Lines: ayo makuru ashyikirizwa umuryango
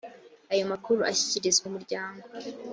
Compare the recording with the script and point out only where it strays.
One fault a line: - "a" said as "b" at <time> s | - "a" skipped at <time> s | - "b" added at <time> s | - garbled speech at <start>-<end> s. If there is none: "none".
none